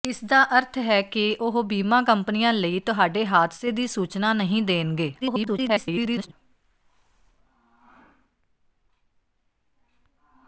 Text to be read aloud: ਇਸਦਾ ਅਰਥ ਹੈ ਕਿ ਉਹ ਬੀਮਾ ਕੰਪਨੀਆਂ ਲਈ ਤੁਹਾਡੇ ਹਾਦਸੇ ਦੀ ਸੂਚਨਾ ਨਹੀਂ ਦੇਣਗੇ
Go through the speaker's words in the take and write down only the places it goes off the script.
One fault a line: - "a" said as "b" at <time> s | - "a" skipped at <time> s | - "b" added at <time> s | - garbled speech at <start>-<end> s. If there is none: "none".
- garbled speech at 5.2-6.3 s